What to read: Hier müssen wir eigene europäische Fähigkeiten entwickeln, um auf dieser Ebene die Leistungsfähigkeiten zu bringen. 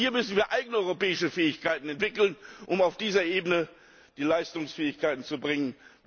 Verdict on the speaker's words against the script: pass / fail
pass